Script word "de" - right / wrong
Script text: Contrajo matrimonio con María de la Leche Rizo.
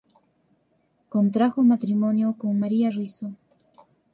wrong